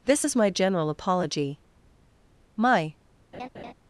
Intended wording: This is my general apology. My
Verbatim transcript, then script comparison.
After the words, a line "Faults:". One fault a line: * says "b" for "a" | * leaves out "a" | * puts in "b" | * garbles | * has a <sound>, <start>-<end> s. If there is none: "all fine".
This is my general apology. My
Faults:
* has a laugh, 3.3-3.7 s